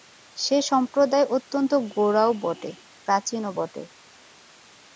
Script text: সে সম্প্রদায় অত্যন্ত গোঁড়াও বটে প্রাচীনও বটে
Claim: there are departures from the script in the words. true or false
false